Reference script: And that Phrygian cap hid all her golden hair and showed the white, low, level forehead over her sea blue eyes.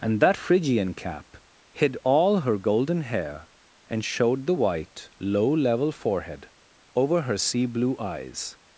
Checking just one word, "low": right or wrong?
right